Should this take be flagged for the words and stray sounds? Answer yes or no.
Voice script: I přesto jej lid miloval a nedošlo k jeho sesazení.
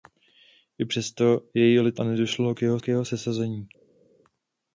yes